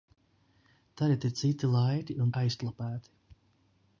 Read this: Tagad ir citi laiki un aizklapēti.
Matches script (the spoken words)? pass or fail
pass